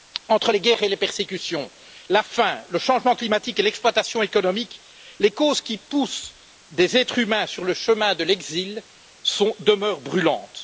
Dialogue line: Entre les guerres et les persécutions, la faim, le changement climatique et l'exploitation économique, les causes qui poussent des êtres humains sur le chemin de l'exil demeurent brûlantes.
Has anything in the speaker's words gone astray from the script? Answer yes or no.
no